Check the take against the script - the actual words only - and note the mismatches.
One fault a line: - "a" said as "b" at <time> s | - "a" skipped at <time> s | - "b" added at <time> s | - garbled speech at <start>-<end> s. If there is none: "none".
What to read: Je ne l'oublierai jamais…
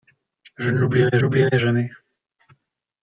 - "l'oublierai" added at 1.2 s